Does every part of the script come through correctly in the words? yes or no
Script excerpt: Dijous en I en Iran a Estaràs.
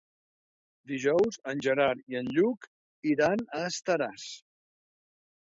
no